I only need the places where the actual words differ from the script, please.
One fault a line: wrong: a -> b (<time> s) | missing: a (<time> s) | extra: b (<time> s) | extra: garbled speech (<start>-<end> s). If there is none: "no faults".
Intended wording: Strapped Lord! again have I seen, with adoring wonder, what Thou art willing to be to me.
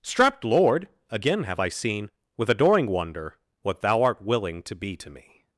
no faults